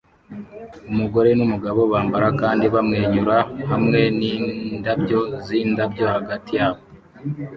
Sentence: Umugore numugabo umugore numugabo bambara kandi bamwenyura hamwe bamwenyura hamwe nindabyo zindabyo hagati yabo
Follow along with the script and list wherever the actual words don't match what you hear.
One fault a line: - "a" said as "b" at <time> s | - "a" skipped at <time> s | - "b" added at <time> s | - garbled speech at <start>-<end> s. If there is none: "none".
- "umugore numugabo" skipped at 1.8 s
- "bamwenyura hamwe" skipped at 4.0 s